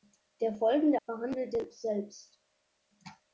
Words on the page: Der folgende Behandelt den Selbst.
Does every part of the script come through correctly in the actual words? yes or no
yes